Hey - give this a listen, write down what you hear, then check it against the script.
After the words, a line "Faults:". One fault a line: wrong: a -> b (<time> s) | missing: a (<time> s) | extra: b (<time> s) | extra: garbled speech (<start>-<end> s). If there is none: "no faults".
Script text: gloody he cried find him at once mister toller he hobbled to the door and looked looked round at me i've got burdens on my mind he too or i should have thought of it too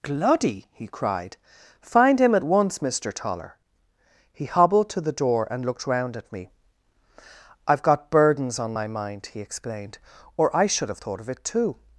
gloody he cried find him at once mister toller he hobbled to the door and looked round at me i've got burdens on my mind he explained or i should have thought of it too
Faults:
missing: looked (5.9 s)
wrong: too -> explained (9.4 s)